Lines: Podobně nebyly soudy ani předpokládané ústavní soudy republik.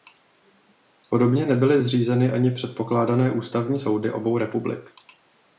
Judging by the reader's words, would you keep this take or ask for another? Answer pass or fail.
fail